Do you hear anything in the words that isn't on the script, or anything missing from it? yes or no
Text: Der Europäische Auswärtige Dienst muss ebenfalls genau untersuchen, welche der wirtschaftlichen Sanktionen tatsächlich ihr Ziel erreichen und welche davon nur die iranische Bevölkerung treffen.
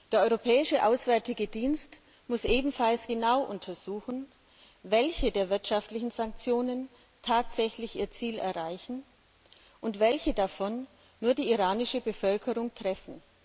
no